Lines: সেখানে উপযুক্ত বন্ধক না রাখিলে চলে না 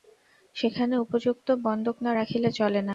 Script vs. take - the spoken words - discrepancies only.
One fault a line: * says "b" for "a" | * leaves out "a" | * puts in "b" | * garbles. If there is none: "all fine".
all fine